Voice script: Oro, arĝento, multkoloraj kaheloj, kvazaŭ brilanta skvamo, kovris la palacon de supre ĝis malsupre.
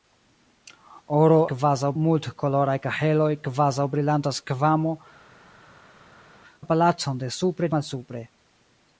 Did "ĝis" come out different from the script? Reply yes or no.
yes